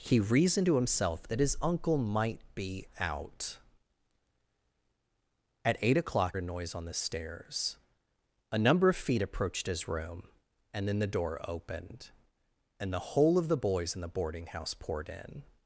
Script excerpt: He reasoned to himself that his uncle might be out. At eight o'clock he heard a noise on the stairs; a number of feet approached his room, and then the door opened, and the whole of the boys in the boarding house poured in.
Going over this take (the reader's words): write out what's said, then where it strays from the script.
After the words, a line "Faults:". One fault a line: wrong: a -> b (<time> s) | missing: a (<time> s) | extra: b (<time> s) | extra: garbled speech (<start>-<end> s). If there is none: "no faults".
He reasoned to himself that his uncle might be out. At eight o'clock a noise on the stairs; a number of feet approached his room, and then the door opened, and the whole of the boys in the boarding house poured in.
Faults:
missing: he heard (6.4 s)